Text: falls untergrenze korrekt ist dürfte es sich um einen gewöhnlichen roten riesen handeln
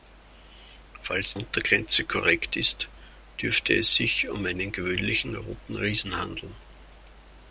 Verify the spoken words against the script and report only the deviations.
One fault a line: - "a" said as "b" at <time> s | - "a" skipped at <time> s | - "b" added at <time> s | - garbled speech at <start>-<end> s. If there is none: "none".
none